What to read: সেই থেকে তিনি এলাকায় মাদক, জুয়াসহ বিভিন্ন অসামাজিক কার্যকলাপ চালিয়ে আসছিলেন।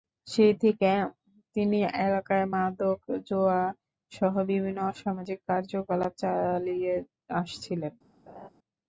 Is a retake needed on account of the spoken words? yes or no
no